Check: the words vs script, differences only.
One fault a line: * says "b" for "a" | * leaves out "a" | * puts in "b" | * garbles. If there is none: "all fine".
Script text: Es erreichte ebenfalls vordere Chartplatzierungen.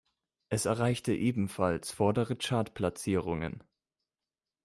all fine